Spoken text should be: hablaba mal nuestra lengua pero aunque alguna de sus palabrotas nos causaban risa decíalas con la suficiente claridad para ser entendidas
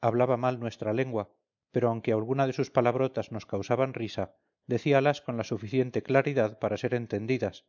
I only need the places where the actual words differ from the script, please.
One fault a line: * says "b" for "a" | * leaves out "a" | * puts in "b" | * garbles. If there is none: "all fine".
all fine